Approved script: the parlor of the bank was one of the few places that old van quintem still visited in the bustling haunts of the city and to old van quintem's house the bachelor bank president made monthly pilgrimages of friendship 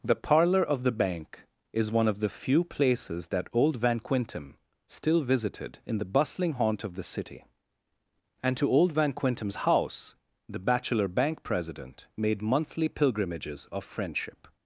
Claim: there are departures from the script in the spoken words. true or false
true